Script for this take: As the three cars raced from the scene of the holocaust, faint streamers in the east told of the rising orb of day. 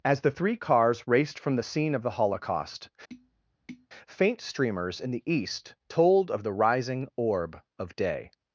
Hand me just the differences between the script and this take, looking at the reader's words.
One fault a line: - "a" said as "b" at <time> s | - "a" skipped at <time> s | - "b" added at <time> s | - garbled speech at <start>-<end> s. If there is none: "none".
none